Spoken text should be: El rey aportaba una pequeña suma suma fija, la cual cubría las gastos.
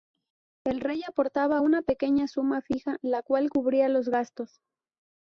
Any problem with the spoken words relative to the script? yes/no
yes